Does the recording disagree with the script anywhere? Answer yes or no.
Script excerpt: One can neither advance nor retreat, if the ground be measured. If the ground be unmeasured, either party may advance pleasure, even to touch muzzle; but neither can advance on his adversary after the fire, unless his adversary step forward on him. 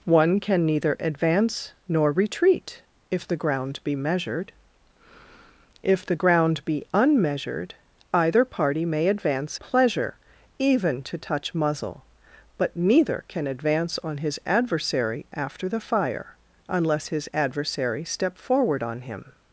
no